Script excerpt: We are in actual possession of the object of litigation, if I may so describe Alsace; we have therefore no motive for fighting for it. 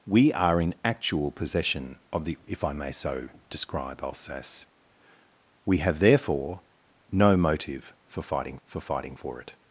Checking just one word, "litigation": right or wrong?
wrong